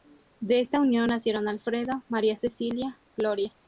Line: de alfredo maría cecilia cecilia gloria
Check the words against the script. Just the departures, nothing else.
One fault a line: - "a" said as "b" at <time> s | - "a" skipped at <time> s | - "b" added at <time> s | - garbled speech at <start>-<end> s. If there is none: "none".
- "esta unión nacieron" added at 0.6 s
- "cecilia" skipped at 3.0 s